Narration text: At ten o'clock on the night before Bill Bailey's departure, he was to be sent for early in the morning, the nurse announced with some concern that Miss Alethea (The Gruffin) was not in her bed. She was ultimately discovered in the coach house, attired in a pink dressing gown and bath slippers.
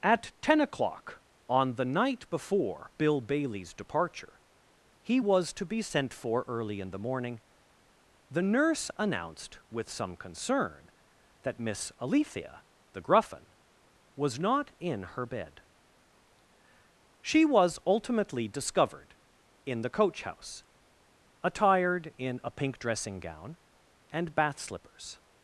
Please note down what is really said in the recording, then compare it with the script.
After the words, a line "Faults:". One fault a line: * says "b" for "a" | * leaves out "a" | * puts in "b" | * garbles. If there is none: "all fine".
At ten o'clock on the night before Bill Bailey's departure, he was to be sent for early in the morning, the nurse announced with some concern that Miss Alethea (The Gruffin) was not in her bed. She was ultimately discovered in the coach house, attired in a pink dressing gown and bath slippers.
Faults:
all fine